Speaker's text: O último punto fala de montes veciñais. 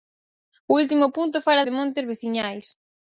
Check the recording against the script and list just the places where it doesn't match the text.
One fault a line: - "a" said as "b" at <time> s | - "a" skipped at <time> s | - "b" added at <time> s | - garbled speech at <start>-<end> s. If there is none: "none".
none